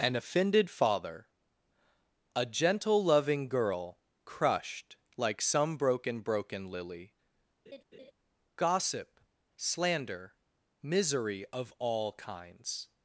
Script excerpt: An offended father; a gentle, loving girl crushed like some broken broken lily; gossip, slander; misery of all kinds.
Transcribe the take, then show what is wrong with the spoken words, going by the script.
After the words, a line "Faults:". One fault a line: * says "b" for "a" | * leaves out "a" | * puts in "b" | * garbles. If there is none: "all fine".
An offended father; a gentle, loving girl crushed like some broken broken lily; gossip, slander; misery of all kinds.
Faults:
all fine